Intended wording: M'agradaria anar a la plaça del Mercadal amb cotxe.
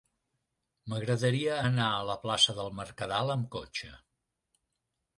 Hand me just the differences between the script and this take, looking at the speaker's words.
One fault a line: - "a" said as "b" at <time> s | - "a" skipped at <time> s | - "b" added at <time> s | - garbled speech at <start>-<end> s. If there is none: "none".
none